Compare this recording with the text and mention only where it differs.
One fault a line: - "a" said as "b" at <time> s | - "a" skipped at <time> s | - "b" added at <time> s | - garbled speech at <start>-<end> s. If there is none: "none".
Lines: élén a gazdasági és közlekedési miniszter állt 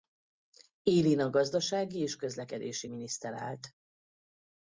none